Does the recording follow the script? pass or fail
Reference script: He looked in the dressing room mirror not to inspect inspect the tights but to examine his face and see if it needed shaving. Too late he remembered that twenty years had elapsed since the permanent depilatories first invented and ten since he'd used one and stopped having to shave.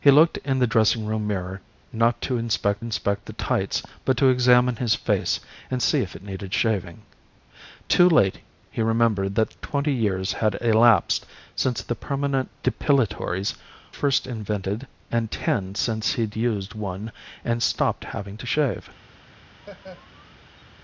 pass